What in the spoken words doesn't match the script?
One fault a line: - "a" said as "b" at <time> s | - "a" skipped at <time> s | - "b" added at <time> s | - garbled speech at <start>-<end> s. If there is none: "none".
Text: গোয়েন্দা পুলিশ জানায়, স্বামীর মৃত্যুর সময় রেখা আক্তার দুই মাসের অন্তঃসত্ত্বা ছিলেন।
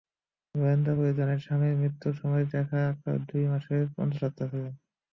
none